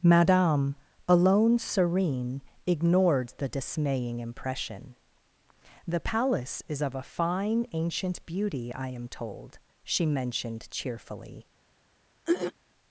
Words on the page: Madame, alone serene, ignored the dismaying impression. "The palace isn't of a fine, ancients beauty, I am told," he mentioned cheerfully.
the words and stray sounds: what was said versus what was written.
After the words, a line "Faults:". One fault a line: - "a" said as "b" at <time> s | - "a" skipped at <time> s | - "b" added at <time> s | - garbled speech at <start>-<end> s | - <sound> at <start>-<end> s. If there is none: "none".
Madame, alone serene, ignored the dismaying impression. "The palace is of a fine, ancient beauty, I am told," she mentioned cheerfully.
Faults:
- "isn't" said as "is" at 6.7 s
- "ancients" said as "ancient" at 7.7 s
- "he" said as "she" at 9.8 s
- throat clearing at 12.2-12.5 s